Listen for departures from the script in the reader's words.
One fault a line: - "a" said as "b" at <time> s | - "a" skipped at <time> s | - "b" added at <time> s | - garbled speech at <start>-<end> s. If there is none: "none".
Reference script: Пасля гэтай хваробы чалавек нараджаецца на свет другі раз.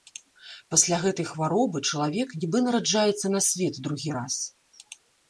- "нібы" added at 2.5 s